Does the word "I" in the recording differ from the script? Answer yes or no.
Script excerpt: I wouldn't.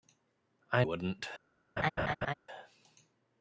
no